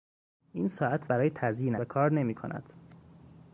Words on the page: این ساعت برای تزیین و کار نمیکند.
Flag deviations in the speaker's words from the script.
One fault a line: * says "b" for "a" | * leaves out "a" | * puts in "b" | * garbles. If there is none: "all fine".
all fine